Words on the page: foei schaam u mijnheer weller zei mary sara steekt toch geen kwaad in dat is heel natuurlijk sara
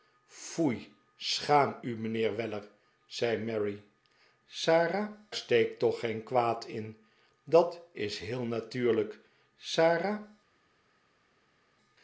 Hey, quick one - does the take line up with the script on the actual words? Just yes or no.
yes